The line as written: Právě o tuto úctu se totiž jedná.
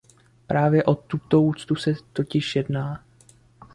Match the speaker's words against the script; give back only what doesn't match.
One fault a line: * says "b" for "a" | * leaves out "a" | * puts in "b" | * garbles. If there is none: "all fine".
all fine